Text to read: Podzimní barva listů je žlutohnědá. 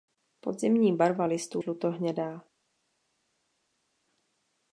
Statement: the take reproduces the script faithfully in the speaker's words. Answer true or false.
false